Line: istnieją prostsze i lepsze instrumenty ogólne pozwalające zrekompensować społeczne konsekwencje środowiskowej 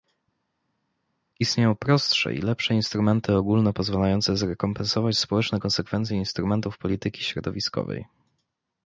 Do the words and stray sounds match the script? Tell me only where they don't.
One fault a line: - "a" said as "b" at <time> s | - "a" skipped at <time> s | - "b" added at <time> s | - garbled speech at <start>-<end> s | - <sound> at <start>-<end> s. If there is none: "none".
- "instrumentów polityki" added at 6.2 s